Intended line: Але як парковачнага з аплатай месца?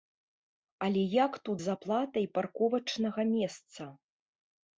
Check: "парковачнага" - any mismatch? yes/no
yes